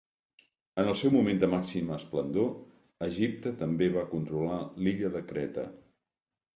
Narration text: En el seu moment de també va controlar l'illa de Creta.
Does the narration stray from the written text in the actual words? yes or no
yes